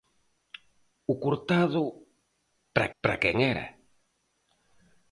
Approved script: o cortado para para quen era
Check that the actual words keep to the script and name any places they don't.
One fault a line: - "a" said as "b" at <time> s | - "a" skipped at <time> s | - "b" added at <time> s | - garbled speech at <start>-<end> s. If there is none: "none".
none